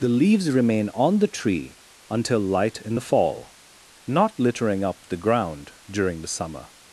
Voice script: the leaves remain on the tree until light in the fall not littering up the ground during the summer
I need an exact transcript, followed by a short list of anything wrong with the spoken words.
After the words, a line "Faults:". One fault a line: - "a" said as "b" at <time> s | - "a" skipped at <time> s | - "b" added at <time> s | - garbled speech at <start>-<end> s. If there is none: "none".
the leaves remain on the tree until light in the fall not littering up the ground during the summer
Faults:
none